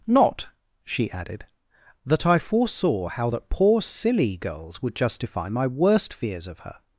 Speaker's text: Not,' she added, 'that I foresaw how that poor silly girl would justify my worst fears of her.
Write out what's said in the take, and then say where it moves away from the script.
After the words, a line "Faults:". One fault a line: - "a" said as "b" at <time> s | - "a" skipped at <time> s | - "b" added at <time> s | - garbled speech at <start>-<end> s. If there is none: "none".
Not,' she added, 'that I foresaw how that poor silly girls would justify my worst fears of her.
Faults:
- "girl" said as "girls" at 4.4 s